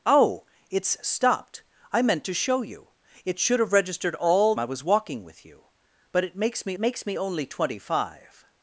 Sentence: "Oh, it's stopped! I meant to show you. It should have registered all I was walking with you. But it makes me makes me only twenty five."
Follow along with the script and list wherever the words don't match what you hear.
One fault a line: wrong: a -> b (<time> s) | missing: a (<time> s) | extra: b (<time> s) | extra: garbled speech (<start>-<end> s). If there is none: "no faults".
no faults